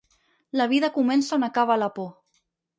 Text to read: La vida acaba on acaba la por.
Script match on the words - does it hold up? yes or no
no